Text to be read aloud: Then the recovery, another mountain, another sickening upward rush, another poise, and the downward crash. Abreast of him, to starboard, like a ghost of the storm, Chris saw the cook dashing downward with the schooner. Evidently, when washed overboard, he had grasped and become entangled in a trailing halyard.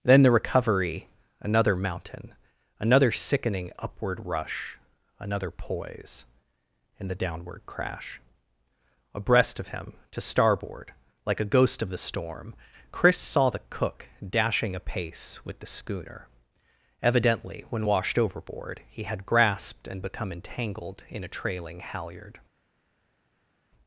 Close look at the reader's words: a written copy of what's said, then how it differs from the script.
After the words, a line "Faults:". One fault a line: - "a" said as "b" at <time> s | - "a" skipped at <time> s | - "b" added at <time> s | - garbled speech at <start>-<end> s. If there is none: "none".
Then the recovery, another mountain, another sickening upward rush, another poise, and the downward crash. Abreast of him, to starboard, like a ghost of the storm, Chris saw the cook dashing apace with the schooner. Evidently, when washed overboard, he had grasped and become entangled in a trailing halyard.
Faults:
- "downward" said as "apace" at 14.8 s